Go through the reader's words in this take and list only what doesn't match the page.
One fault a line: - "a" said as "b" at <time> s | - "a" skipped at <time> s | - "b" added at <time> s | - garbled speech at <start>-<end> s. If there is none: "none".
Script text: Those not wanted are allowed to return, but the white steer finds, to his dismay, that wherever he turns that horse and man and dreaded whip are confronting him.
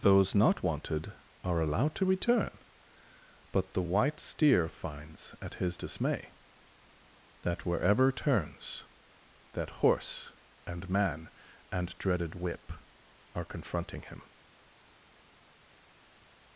- "to" said as "at" at 5.4 s
- "he" skipped at 8.1 s